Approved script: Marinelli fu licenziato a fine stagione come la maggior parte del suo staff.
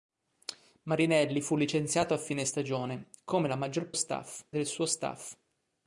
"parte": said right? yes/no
no